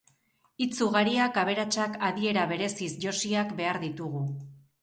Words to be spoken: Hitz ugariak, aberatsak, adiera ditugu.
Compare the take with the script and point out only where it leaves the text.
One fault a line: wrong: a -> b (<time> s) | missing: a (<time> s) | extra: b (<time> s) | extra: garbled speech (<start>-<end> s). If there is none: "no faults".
extra: bereziz josiak behar (2.5 s)